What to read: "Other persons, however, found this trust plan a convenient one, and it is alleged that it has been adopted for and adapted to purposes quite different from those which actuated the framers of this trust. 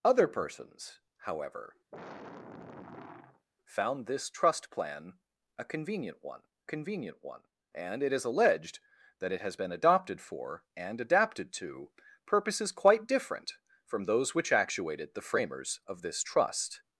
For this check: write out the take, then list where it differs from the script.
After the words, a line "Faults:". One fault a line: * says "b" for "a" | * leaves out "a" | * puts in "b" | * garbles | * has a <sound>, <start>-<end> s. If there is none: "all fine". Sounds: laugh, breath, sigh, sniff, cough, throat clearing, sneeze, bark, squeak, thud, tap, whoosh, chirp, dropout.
"Other persons, however, found this trust plan a convenient one convenient one, and it is alleged that it has been adopted for and adapted to purposes quite different from those which actuated the framers of this trust.
Faults:
* has a sigh, 1.9-3.5 s
* puts in "convenient one"